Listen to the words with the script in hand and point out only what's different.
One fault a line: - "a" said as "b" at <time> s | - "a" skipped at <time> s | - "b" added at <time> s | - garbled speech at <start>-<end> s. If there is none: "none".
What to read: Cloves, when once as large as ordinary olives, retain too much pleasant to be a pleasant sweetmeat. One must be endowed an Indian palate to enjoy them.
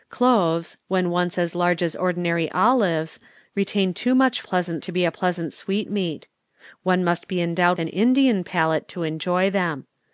none